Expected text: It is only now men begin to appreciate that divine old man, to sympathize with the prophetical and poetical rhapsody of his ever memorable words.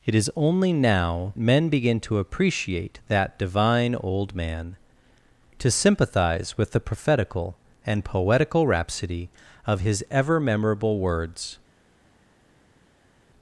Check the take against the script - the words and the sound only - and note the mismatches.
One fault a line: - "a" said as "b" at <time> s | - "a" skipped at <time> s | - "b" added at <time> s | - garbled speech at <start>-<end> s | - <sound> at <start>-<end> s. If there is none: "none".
none